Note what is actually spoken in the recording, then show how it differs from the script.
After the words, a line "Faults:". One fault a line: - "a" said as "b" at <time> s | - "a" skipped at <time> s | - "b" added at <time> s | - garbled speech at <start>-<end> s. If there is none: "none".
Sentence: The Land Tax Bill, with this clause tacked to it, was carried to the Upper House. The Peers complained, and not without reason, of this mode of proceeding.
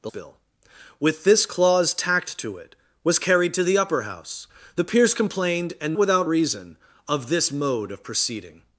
The Bill, with this clause tacked to it, was carried to the Upper House. The Peers complained, and without reason, of this mode of proceeding.
Faults:
- "Land Tax" skipped at 0.1 s
- "not" skipped at 6.0 s